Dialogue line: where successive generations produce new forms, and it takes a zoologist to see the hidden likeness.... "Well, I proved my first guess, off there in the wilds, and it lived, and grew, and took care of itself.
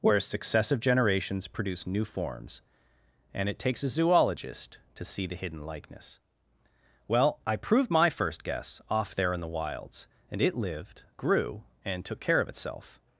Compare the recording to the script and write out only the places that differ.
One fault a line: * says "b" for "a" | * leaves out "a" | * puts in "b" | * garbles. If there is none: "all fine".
* leaves out "and"